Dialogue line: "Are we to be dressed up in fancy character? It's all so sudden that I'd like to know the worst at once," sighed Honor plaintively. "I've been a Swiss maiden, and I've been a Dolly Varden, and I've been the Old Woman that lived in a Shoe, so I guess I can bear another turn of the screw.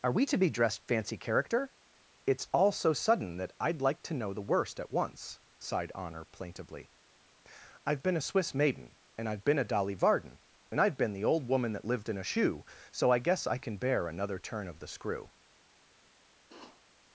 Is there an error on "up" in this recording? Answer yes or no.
yes